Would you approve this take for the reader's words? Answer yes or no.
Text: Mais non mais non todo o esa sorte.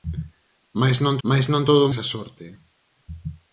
yes